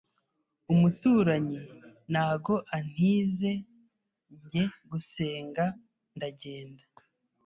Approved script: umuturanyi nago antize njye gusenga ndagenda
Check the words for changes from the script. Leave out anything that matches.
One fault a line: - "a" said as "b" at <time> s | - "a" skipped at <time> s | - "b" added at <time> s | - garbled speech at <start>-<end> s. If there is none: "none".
none